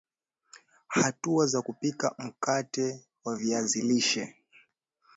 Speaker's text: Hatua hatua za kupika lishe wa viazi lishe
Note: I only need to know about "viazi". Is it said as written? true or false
true